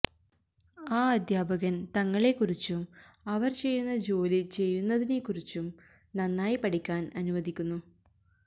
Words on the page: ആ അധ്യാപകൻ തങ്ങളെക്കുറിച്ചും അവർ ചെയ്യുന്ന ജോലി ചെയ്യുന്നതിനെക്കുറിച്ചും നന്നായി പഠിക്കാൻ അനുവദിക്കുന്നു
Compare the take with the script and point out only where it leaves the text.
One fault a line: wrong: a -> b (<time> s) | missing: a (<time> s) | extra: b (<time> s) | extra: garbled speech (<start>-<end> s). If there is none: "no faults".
no faults